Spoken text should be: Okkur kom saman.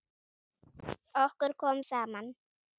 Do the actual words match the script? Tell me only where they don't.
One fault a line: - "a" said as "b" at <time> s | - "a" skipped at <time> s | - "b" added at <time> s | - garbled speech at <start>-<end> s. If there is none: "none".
none